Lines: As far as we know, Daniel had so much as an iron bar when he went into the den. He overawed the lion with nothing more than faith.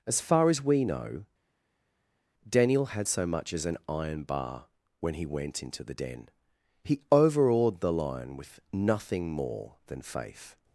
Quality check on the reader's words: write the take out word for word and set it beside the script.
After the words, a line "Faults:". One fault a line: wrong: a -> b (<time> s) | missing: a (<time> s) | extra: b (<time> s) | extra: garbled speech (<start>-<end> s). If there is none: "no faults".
As far as we know, Daniel had so much as an iron bar when he went into the den. He overawed the lion with nothing more than faith.
Faults:
no faults